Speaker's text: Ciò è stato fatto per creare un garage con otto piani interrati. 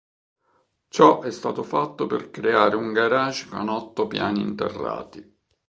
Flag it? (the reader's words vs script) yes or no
no